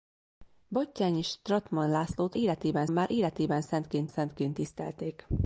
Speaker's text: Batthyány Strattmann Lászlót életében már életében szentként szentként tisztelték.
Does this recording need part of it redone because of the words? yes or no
no